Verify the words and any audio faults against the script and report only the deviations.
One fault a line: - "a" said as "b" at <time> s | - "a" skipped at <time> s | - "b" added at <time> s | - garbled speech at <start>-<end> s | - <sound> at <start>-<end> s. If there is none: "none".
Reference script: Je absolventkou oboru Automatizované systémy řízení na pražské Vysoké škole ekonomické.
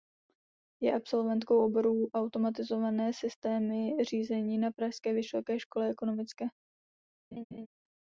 - laugh at 7.3-7.7 s